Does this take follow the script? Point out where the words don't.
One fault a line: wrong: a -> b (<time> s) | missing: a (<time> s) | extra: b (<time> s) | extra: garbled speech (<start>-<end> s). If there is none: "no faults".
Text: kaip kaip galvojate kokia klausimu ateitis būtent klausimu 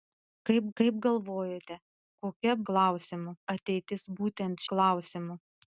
no faults